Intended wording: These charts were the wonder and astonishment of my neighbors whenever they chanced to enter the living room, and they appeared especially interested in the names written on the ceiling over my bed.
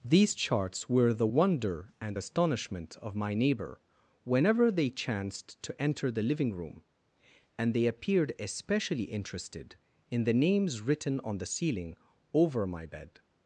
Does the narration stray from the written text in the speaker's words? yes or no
yes